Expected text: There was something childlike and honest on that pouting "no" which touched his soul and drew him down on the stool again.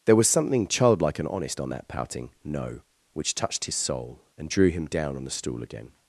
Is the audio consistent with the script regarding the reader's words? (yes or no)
yes